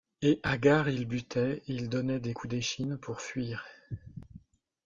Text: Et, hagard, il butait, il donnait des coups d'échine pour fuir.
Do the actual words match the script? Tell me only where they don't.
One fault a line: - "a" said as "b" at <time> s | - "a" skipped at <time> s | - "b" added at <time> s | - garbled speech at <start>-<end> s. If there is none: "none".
none